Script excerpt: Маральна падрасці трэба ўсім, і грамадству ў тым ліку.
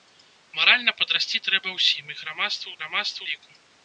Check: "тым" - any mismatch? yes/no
yes